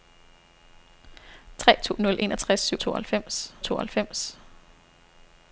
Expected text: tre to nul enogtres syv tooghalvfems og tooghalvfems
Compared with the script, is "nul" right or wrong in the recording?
right